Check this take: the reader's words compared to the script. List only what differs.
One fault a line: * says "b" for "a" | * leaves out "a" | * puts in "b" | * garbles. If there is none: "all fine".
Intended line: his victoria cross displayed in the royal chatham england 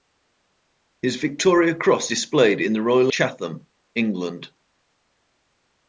all fine